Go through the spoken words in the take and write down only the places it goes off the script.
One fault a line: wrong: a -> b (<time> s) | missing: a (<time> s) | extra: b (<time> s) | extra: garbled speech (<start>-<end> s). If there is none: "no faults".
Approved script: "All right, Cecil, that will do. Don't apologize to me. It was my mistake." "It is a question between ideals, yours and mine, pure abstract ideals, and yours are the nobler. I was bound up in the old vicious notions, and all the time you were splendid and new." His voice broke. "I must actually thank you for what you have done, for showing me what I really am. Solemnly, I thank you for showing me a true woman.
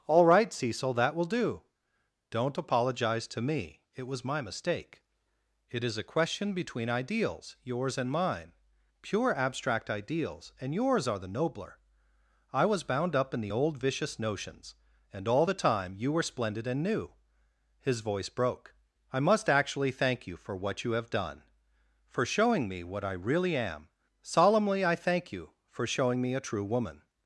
no faults